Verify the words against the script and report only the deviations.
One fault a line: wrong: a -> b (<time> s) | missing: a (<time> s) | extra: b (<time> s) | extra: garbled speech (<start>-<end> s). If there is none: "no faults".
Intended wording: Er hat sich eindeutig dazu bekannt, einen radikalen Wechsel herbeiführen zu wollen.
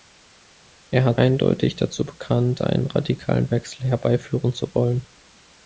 missing: sich (1.2 s)